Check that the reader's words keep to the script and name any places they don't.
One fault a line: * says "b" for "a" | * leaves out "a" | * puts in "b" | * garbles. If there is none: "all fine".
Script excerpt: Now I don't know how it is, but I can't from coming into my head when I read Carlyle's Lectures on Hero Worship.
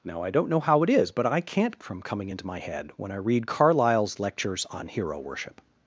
all fine